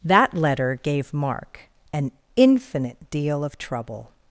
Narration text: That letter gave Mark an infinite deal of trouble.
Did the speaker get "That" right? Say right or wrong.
right